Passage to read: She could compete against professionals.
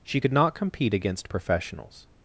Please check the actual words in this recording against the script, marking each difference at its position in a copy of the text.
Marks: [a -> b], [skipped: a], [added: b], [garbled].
She could [added: not] compete against professionals.